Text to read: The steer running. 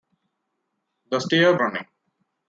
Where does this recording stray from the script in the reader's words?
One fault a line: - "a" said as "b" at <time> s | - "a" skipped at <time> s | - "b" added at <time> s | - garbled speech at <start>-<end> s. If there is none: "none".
none